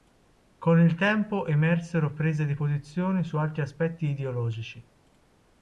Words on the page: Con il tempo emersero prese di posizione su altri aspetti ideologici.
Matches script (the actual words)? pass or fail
pass